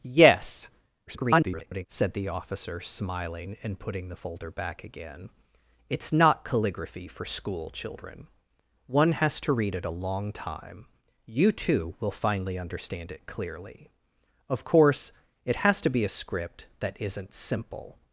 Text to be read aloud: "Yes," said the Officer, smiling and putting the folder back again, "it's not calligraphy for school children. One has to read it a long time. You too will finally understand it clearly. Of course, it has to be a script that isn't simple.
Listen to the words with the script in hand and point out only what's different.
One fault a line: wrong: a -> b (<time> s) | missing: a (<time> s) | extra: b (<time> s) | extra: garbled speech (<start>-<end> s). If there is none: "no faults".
extra: garbled speech (1.1-1.9 s)